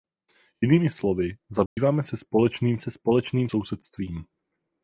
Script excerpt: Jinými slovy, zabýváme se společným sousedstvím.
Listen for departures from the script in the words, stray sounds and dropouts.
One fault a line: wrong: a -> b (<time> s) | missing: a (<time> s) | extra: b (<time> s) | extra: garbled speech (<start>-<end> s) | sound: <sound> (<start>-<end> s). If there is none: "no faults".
sound: dropout (1.7-1.8 s)
extra: se společným (2.8 s)